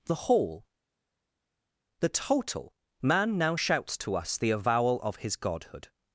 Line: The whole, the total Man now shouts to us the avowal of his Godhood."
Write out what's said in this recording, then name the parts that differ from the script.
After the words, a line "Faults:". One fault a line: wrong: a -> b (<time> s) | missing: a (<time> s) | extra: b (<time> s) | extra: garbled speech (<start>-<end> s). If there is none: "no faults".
The whole, the total Man now shouts to us the avowal of his Godhood."
Faults:
no faults